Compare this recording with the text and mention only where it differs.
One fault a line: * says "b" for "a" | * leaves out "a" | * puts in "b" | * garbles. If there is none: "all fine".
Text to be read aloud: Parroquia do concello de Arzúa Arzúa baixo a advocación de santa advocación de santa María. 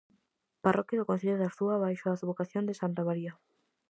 * leaves out "Arzúa"
* leaves out "advocación de santa"